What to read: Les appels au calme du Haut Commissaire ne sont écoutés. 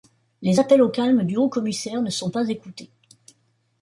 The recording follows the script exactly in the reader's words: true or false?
false